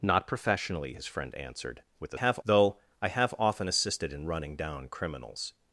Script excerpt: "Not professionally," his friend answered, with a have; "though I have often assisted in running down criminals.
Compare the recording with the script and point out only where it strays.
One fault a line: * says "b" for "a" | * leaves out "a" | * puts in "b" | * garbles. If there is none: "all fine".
all fine